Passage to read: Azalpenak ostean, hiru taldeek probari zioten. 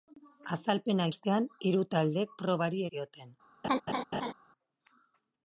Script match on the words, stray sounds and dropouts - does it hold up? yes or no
no